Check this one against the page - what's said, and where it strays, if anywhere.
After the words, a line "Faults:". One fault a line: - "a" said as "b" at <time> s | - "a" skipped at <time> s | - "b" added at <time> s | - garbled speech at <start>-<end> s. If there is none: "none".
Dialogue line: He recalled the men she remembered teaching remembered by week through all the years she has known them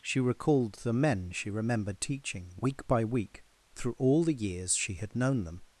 She recalled the men she remembered teaching week by week through all the years she had known them
Faults:
- "He" said as "She" at 0.0 s
- "remembered" said as "week" at 2.6 s
- "has" said as "had" at 5.0 s